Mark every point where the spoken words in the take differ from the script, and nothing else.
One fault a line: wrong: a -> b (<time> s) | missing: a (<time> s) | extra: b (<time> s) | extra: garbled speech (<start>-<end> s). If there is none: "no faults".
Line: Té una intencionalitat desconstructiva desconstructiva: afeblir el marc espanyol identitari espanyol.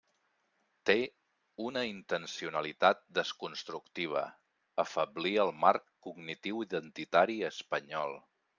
missing: desconstructiva (4.2 s)
wrong: espanyol -> cognitiu (6.1 s)